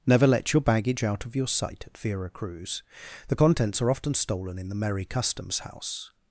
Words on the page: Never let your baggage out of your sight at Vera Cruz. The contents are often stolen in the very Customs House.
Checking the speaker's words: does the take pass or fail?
fail